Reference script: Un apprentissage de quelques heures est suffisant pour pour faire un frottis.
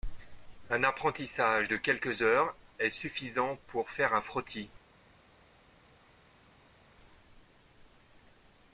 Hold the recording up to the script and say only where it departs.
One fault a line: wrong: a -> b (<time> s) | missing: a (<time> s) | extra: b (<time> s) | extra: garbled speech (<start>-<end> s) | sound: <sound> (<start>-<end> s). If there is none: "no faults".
missing: pour (3.9 s)